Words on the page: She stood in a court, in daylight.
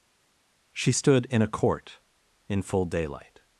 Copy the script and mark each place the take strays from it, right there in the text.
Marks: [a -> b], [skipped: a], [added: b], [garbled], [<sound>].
She stood in a court, in [added: full] daylight.